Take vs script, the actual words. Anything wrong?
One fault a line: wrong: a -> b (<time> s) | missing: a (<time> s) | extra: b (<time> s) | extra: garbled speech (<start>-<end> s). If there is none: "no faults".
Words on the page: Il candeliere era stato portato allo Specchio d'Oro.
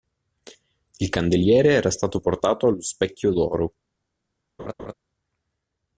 no faults